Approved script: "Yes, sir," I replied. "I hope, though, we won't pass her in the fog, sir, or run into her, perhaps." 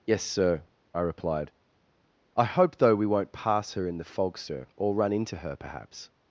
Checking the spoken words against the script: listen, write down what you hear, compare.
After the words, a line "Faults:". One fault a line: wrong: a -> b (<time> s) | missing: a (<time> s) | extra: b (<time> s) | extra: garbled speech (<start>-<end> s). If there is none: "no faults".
"Yes, sir," I replied. "I hope, though, we won't pass her in the fog, sir, or run into her, perhaps."
Faults:
no faults